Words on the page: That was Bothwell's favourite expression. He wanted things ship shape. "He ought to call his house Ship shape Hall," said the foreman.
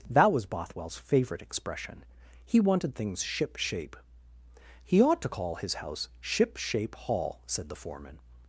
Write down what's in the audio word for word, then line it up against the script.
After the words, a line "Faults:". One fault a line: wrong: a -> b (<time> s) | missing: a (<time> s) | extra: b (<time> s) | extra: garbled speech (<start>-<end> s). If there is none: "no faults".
That was Bothwell's favourite expression. He wanted things ship shape. "He ought to call his house Ship shape Hall," said the foreman.
Faults:
no faults